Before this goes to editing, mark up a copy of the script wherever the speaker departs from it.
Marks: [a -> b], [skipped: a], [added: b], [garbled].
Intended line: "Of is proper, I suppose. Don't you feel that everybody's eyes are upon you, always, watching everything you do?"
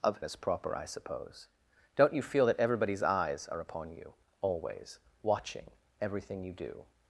"Of is proper, I suppose. Don't you feel that everybody's eyes are upon you, always, watching everything you do?"